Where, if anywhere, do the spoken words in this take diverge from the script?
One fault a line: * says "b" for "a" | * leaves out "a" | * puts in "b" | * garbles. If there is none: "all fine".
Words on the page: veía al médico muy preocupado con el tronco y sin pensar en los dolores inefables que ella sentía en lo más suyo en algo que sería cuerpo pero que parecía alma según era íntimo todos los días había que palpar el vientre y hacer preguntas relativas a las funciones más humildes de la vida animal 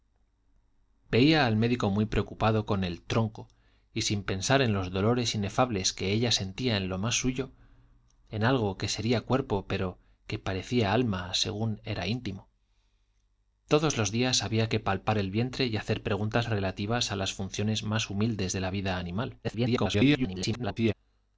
* garbles